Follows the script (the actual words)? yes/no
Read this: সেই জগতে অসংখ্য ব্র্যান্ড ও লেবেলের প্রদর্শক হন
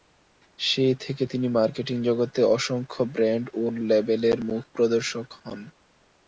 no